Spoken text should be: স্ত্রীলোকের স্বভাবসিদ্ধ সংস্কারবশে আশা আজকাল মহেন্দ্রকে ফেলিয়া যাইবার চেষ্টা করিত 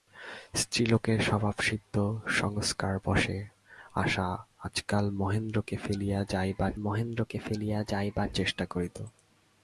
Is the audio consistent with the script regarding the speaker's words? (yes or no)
no